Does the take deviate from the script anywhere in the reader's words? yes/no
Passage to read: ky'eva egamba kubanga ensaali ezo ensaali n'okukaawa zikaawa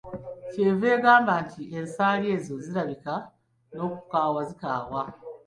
yes